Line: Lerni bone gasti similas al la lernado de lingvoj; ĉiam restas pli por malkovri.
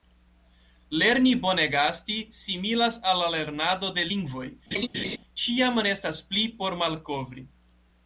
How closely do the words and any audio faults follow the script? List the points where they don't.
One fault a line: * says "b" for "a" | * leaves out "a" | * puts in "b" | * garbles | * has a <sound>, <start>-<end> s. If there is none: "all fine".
* has a laugh, 4.7-5.2 s